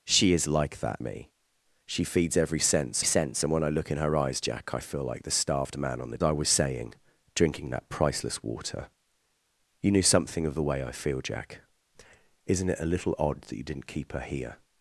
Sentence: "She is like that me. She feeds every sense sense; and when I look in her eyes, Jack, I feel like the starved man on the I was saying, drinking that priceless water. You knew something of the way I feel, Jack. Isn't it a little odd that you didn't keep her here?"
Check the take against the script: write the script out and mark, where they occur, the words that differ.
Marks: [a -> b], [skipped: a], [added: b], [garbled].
"She is like that me. She feeds every sense sense; and when I look in her eyes, Jack, I feel like the starved man on the I was saying, drinking that priceless water. You knew something of the way I feel, Jack. Isn't it a little odd that you didn't keep her here?"